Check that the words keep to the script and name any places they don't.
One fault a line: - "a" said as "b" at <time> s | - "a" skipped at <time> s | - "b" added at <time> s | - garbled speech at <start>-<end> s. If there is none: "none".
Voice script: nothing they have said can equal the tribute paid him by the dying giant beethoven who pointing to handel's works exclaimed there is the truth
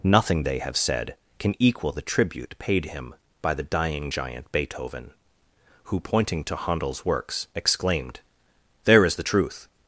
none